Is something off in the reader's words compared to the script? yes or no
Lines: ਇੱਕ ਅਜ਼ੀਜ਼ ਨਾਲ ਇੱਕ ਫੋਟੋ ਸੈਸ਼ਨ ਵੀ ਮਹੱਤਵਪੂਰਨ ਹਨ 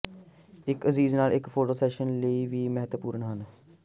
yes